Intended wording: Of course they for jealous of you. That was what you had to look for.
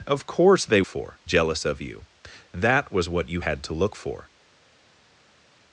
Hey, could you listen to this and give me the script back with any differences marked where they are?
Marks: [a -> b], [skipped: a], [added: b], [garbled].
Of course they for jealous of you. That was what you had to look for.